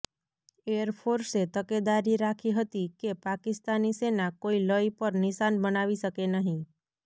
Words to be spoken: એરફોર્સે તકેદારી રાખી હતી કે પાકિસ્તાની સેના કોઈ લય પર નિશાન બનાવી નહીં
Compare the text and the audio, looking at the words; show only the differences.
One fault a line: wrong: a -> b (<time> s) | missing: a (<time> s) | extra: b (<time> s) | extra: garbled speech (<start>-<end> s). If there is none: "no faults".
extra: શકે (6.0 s)